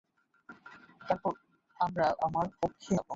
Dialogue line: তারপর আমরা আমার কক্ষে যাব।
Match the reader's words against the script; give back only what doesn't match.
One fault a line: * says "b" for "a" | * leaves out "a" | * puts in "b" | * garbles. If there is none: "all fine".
all fine